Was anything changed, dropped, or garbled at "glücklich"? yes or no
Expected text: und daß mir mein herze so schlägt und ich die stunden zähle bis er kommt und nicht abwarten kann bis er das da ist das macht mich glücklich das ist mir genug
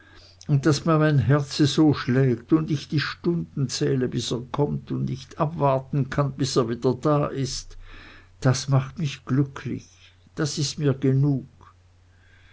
no